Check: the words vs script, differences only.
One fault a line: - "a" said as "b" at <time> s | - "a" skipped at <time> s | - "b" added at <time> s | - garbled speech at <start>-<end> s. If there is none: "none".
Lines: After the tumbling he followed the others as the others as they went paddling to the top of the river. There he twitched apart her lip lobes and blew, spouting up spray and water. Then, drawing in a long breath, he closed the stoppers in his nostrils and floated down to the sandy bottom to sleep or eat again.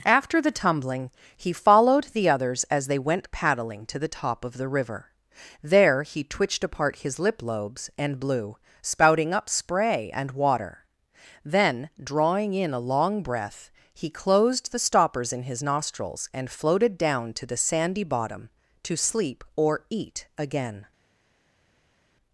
- "the others as" skipped at 2.9 s
- "her" said as "his" at 7.0 s